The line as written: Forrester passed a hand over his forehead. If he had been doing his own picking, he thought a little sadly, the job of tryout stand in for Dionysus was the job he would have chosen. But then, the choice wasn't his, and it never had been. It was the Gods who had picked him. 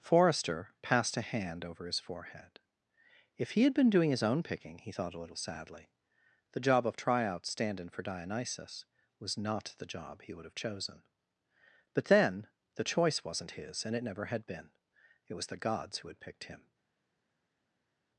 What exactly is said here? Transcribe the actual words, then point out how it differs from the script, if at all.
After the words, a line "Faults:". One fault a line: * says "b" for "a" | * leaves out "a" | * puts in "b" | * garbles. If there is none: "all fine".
Forrester passed a hand over his forehead. If he had been doing his own picking, he thought a little sadly, the job of tryout stand in for Dionysus was not the job he would have chosen. But then, the choice wasn't his, and it never had been. It was the Gods who had picked him.
Faults:
* puts in "not"